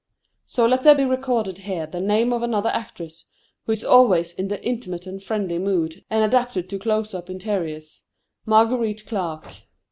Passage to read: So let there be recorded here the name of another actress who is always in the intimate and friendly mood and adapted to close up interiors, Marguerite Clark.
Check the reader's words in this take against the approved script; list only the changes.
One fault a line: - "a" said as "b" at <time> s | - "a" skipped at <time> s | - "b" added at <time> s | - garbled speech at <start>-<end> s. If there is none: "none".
none